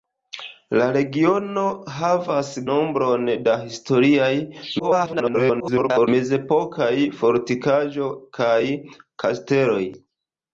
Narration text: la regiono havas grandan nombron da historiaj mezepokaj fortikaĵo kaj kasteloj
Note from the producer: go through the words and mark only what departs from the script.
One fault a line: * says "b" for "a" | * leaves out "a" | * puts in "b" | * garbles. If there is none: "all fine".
* leaves out "grandan"
* garbles